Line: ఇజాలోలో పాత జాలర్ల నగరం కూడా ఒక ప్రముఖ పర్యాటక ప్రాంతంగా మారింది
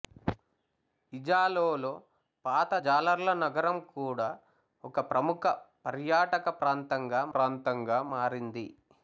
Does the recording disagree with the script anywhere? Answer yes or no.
yes